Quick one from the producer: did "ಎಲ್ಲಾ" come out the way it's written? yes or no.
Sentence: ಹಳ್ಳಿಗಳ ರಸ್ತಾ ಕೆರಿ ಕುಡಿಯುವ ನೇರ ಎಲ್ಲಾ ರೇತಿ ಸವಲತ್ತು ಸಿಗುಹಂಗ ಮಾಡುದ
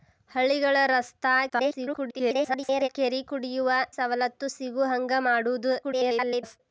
no